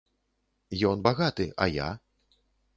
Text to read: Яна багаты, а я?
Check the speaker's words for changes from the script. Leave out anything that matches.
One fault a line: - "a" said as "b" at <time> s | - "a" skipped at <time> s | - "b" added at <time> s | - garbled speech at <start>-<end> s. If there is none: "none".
- "Яна" said as "Ён" at 0.9 s